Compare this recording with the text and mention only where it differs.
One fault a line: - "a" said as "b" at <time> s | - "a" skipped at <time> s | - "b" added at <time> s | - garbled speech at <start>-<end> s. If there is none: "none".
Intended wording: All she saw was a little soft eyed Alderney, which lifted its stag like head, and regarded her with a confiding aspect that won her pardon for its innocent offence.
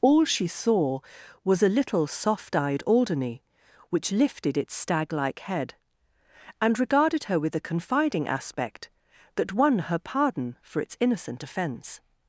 none